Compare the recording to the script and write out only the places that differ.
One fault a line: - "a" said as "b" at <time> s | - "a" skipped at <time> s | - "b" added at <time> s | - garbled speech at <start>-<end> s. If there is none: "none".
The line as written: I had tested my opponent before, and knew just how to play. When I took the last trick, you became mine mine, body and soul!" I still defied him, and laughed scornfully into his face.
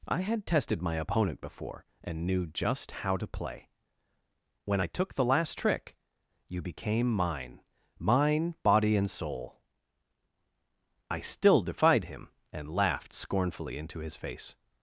none